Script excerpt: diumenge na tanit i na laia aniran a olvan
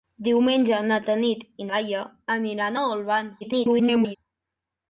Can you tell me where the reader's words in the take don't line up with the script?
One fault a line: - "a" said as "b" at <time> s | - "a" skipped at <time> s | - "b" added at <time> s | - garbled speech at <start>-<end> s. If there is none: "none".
- "na" skipped at 1.7 s
- garbled speech at 3.4-4.2 s